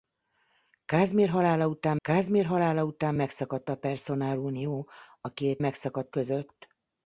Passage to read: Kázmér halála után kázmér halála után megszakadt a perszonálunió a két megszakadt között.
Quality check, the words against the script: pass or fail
pass